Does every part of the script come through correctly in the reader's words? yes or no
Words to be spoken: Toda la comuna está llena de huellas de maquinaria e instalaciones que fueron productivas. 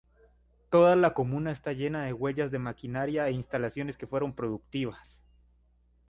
yes